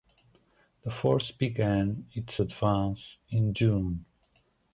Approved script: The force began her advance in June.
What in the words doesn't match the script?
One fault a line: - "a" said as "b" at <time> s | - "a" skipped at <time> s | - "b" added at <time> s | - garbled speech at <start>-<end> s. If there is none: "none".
- "her" said as "its" at 2.1 s